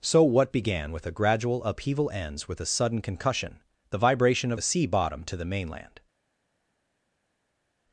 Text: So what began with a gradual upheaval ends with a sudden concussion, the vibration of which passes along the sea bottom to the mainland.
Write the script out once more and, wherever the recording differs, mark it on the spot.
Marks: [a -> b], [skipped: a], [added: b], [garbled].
So what began with a gradual upheaval ends with a sudden concussion, the vibration of [skipped: which passes along] the sea bottom to the mainland.